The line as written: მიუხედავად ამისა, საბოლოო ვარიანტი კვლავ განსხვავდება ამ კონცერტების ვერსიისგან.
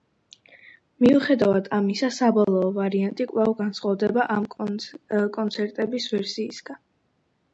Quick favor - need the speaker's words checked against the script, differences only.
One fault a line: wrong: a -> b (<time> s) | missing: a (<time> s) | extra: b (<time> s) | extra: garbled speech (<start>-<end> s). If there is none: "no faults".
no faults